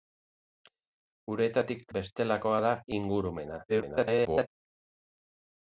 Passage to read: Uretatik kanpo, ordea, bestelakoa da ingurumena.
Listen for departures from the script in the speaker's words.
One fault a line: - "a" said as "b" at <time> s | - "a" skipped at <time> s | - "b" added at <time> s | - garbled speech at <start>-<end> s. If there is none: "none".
- "kanpo ordea" skipped at 1.8 s
- garbled speech at 3.7-4.5 s